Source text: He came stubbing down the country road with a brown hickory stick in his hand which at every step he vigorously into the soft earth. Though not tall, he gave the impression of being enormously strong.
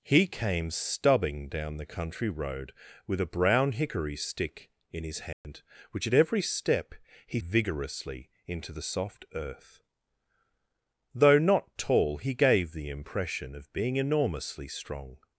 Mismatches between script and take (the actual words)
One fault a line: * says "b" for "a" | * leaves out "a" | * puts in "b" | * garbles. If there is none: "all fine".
all fine